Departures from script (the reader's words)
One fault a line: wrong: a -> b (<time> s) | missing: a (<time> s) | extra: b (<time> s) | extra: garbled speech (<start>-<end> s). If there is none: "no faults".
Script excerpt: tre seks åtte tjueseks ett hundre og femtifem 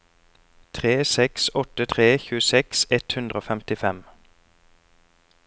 extra: tre (1.9 s)